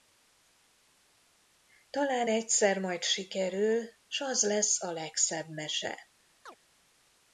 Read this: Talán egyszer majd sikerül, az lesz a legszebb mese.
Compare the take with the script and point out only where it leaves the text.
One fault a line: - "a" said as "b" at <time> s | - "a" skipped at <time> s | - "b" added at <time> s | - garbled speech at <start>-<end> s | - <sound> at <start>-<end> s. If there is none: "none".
- "s" added at 4.1 s
- chirp at 6.5-6.6 s